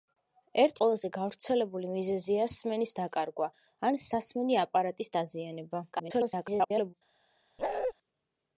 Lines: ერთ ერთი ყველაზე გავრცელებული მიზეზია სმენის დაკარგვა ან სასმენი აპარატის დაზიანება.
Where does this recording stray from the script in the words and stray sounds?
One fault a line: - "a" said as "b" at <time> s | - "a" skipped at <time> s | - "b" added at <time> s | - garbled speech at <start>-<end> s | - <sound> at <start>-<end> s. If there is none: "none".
- "ერთი" skipped at 0.8 s
- garbled speech at 5.9-6.9 s
- bark at 7.6-7.9 s